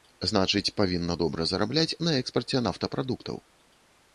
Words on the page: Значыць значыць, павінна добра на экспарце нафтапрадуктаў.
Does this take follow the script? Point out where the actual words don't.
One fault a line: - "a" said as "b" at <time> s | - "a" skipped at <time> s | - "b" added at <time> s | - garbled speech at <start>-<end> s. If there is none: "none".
- "значыць" skipped at 0.7 s
- "зарабляць" added at 1.5 s